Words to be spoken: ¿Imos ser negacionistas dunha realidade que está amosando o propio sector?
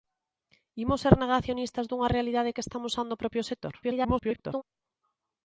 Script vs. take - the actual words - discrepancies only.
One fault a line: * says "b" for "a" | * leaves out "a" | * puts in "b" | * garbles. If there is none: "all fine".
* garbles